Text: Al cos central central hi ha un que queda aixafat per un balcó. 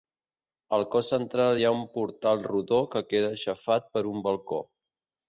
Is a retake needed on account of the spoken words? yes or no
yes